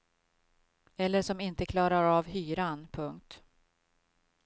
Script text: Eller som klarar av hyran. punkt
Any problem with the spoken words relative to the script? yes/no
yes